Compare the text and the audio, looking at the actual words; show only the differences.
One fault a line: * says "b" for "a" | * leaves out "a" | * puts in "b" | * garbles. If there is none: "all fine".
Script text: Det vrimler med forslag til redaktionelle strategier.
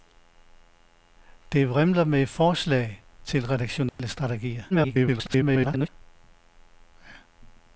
* garbles